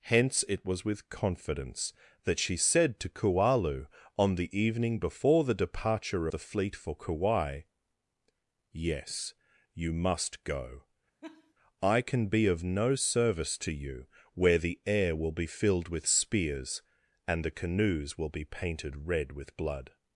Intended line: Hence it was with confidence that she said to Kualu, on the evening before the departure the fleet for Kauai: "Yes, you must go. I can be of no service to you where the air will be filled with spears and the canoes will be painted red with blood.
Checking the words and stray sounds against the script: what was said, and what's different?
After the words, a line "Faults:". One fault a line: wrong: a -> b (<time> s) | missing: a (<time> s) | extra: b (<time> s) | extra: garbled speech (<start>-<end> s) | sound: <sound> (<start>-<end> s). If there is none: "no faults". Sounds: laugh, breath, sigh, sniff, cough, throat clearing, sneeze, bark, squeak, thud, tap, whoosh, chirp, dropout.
Hence it was with confidence that she said to Kualu, on the evening before the departure the fleet for Kauai: "Yes, you must go. I can be of no service to you where the air will be filled with spears and the canoes will be painted red with blood.
Faults:
sound: laugh (11.2-11.5 s)